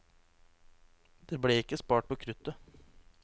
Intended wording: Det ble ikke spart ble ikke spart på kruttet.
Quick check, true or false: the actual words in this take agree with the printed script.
false